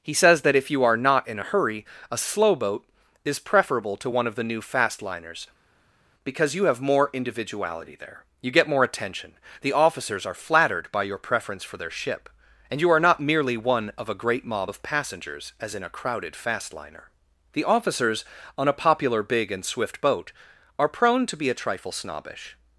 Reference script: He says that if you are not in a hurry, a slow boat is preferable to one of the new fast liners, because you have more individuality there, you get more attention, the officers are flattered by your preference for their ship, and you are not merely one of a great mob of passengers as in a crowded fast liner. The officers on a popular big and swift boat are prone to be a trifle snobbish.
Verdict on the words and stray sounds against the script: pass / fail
pass